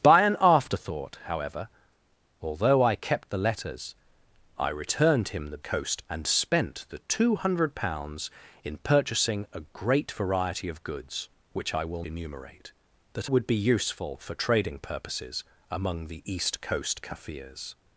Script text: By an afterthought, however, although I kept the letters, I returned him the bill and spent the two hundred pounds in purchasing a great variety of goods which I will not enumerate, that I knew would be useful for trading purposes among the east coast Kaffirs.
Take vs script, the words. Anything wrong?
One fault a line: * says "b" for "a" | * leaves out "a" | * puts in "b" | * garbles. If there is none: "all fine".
* says "coast" for "bill"
* leaves out "not"
* leaves out "I knew"